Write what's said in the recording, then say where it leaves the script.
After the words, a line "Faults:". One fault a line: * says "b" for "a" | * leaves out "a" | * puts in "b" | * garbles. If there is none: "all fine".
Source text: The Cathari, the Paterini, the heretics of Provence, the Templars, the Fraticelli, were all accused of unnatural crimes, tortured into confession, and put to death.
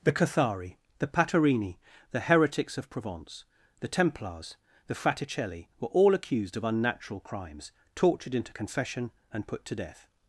The Cathari, the Paterini, the heretics of Provence, the Templars, the Fraticelli, were all accused of unnatural crimes, tortured into confession, and put to death.
Faults:
all fine